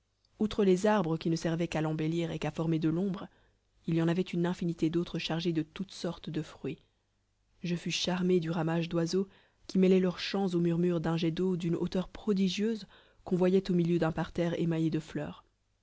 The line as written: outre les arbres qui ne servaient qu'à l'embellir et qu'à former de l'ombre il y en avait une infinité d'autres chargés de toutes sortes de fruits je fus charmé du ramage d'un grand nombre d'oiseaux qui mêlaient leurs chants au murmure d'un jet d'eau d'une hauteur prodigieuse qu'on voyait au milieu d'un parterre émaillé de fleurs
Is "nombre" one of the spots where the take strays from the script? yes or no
yes